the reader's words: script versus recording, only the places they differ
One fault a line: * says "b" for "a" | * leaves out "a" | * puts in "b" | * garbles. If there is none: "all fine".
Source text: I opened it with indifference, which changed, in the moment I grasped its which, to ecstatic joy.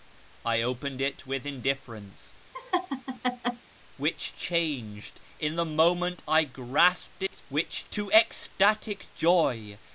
all fine